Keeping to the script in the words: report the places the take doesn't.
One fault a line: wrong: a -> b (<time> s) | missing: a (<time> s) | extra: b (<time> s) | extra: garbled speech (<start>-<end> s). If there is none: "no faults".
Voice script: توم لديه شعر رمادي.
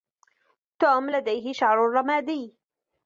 no faults